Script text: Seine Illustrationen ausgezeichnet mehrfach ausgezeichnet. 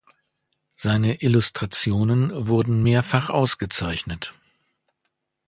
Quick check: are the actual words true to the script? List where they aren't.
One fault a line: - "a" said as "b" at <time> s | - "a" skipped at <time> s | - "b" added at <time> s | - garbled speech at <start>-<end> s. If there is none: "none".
- "ausgezeichnet" said as "wurden" at 2.5 s